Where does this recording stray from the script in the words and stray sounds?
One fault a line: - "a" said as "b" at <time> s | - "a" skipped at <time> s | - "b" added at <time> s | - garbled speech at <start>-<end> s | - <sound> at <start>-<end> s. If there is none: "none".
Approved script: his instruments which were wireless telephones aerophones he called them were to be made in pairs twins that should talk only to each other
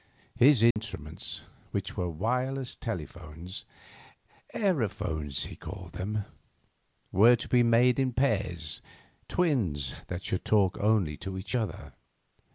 - dropout at 0.7-0.8 s